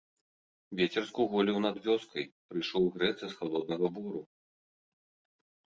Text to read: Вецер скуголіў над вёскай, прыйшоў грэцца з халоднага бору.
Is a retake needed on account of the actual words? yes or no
no